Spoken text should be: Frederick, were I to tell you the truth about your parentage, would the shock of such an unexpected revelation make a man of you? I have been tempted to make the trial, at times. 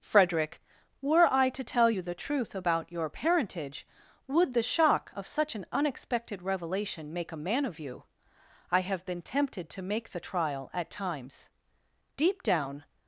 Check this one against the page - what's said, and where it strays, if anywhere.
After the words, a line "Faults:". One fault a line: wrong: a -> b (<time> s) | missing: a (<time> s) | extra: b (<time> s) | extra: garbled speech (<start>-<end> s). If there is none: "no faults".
Frederick, were I to tell you the truth about your parentage, would the shock of such an unexpected revelation make a man of you? I have been tempted to make the trial, at times. Deep down
Faults:
extra: Deep down (12.1 s)